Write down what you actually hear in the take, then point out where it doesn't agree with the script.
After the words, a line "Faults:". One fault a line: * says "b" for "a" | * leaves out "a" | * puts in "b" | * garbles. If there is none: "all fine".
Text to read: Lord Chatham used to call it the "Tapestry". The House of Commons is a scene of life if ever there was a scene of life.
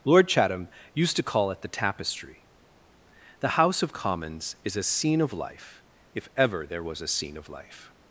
Lord Chatham used to call it the "Tapestry". The House of Commons is a scene of life if ever there was a scene of life.
Faults:
all fine